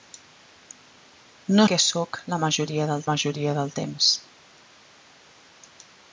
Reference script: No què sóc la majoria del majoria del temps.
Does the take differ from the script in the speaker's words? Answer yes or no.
no